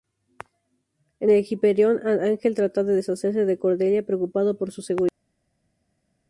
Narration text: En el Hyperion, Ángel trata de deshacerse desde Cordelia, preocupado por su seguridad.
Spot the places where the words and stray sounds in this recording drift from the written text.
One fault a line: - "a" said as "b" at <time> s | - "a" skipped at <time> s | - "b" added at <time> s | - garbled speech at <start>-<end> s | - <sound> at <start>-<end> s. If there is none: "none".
- "desde" said as "de" at 3.4 s